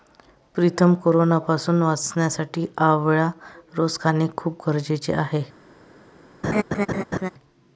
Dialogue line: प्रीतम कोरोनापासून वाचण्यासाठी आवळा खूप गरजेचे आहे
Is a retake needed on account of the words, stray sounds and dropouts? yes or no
yes